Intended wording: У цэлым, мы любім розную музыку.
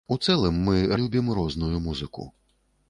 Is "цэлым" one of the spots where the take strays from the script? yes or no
no